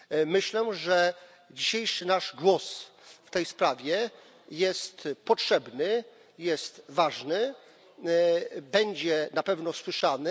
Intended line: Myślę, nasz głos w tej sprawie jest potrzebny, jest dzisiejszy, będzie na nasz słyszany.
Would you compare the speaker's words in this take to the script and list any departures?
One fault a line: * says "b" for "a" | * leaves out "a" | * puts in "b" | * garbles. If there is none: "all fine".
* puts in "że dzisiejszy"
* says "ważny" for "dzisiejszy"
* says "pewno" for "nasz"